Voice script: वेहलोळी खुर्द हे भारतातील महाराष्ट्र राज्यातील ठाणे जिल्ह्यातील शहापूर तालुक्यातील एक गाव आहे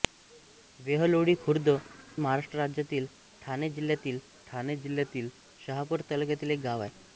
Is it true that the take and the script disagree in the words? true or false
true